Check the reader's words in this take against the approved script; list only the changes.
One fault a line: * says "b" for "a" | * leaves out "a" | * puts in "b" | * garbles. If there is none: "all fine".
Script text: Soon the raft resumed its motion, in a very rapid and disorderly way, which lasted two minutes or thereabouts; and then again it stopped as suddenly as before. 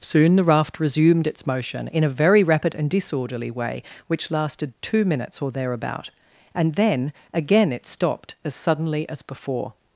* says "thereabout" for "thereabouts"